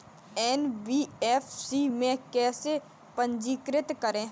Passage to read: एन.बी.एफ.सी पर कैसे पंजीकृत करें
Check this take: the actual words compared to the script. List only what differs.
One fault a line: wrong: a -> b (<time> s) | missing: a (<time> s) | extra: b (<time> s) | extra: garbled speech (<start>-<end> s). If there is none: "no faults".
wrong: पर -> में (1.8 s)